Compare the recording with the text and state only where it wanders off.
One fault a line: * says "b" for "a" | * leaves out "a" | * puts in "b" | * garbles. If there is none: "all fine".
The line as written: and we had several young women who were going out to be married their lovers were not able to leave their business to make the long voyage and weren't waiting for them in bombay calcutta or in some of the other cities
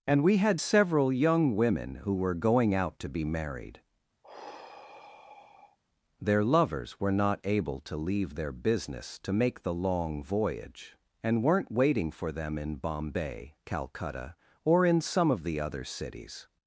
all fine